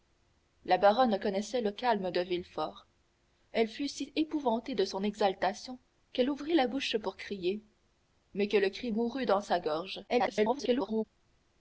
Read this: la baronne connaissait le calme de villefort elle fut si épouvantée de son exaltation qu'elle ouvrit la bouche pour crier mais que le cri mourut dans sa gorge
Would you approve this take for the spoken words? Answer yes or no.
no